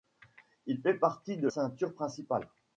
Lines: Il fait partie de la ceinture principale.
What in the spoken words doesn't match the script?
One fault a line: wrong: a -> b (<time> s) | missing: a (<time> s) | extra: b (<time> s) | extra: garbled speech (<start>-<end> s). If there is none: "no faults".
missing: la (1.5 s)